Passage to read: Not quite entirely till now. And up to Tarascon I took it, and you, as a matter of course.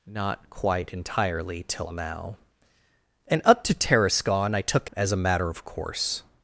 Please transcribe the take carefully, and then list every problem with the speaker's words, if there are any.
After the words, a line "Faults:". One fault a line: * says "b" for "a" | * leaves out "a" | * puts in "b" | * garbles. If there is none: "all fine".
Not quite entirely till now. And up to Tarascon I took as a matter of course.
Faults:
* leaves out "it and you"